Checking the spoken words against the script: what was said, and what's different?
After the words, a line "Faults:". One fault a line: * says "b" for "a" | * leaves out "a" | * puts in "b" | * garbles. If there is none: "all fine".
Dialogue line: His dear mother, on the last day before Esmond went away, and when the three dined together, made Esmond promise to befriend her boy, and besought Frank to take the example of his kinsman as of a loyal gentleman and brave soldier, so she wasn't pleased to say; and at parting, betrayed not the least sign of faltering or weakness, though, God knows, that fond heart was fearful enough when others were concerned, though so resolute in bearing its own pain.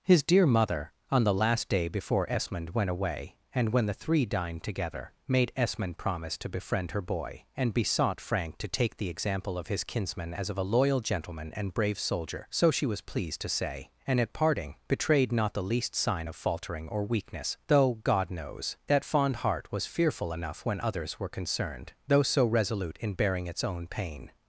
His dear mother, on the last day before Esmond went away, and when the three dined together, made Esmond promise to befriend her boy, and besought Frank to take the example of his kinsman as of a loyal gentleman and brave soldier, so she was pleased to say; and at parting, betrayed not the least sign of faltering or weakness, though, God knows, that fond heart was fearful enough when others were concerned, though so resolute in bearing its own pain.
Faults:
* says "was" for "wasn't"